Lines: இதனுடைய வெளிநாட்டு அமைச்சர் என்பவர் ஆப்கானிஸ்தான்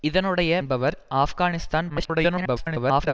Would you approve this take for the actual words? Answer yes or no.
no